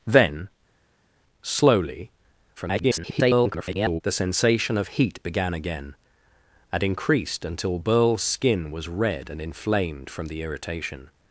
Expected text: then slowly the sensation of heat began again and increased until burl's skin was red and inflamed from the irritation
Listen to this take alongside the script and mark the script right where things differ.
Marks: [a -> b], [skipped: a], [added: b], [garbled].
then slowly [garbled] the sensation of heat began again and increased until burl's skin was red and inflamed from the irritation